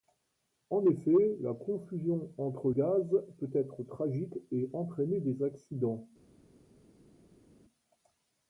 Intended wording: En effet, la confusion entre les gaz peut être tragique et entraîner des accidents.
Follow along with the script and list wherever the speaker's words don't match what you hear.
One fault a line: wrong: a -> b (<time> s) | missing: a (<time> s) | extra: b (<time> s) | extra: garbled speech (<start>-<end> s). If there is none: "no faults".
missing: les (2.7 s)